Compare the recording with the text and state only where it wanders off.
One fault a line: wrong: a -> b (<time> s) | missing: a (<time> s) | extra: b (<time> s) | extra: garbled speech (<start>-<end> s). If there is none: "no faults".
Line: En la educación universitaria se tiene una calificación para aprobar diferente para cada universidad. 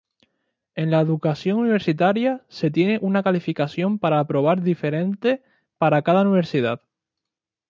no faults